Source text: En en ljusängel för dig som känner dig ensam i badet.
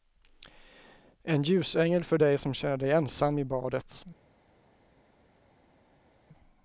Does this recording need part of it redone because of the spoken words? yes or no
yes